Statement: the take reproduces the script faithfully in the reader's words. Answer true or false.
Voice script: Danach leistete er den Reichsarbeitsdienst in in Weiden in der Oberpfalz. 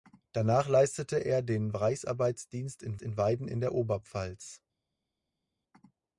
true